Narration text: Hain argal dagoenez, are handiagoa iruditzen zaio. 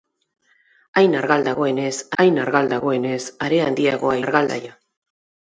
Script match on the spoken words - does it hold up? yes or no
no